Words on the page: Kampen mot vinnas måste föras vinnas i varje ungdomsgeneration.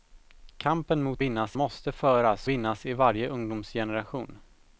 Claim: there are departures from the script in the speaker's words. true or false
false